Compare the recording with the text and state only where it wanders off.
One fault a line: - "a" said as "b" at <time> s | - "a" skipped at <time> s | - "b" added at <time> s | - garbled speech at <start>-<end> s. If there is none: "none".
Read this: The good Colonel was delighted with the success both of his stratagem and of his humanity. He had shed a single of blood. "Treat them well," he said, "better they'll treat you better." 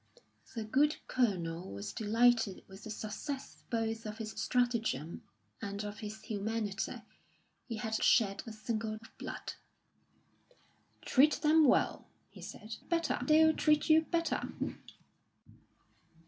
none